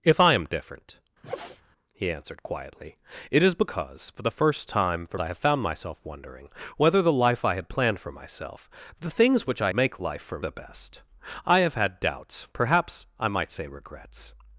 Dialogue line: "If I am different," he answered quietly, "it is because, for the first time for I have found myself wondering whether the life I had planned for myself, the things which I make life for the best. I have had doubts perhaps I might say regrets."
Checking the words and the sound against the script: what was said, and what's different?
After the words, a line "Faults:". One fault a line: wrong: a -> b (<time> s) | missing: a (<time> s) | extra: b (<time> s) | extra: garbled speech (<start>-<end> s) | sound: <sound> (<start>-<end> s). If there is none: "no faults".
"If I am different," he answered quietly, "it is because, for the first time for I have found myself wondering whether the life I had planned for myself, the things which I make life for the best. I have had doubts perhaps I might say regrets."
Faults:
sound: sneeze (1.2-1.6 s)